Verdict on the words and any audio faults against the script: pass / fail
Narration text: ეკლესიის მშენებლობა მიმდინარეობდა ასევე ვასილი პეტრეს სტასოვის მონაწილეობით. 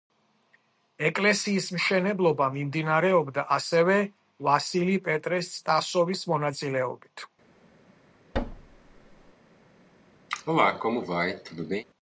fail